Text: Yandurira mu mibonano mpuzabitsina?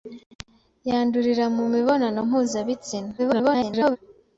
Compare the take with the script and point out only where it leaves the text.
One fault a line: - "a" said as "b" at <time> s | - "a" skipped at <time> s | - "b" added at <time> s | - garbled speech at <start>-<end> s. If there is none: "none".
- garbled speech at 3.2-4.0 s